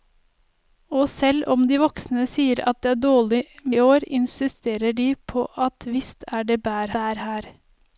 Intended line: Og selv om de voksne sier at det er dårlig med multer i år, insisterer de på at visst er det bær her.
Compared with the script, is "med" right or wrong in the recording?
wrong